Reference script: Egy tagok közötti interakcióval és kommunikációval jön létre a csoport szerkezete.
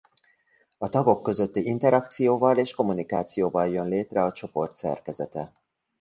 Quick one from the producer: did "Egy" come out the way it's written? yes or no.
no